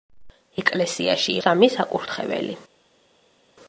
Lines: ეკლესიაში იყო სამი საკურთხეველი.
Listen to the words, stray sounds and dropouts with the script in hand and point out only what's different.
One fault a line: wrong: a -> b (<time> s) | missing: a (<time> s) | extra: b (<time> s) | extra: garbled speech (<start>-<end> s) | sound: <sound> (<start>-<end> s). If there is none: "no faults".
missing: იყო (1.4 s)